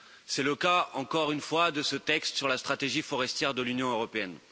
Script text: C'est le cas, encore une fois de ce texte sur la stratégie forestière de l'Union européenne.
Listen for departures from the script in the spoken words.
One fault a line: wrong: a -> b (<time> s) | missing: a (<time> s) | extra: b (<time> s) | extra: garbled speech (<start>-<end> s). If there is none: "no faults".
no faults